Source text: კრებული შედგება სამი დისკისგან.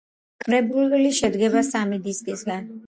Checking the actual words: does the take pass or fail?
pass